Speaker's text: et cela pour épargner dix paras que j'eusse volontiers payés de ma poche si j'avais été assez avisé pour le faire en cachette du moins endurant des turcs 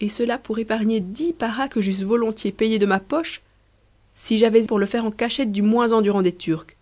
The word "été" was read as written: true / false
false